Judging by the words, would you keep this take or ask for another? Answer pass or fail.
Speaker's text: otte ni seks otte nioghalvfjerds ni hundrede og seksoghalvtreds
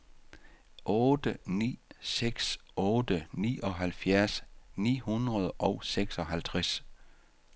pass